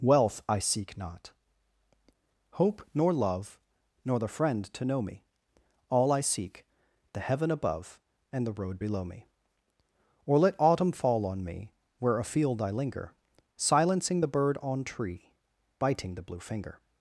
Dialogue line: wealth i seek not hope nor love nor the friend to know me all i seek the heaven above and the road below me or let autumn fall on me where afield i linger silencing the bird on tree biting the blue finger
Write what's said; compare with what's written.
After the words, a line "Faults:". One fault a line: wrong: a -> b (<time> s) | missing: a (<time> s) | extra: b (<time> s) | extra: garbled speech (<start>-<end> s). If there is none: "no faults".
wealth i seek not hope nor love nor the friend to know me all i seek the heaven above and the road below me or let autumn fall on me where afield i linger silencing the bird on tree biting the blue finger
Faults:
no faults